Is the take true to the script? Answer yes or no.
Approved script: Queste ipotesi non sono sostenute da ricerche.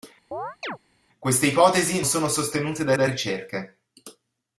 no